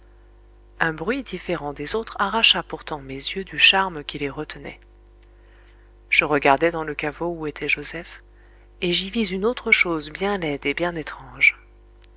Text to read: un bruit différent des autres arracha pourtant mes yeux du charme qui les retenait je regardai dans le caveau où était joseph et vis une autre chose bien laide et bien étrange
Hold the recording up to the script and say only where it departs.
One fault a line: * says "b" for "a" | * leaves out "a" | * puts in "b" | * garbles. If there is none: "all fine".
* puts in "j'y"